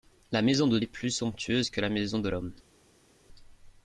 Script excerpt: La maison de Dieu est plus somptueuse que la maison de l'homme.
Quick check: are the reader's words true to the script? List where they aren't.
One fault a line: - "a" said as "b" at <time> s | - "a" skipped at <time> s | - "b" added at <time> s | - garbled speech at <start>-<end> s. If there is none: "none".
- "Dieu" skipped at 0.8 s